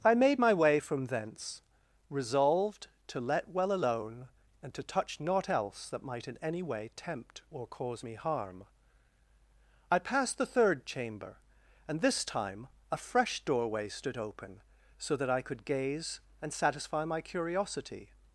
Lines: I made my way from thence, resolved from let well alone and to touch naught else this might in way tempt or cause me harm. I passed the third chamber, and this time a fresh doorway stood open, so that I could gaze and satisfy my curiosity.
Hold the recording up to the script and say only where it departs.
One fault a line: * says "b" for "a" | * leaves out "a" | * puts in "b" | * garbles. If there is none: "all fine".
* says "to" for "from"
* says "that" for "this"
* puts in "any"